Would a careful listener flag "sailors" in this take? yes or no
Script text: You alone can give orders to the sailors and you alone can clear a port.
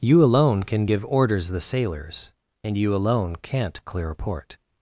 no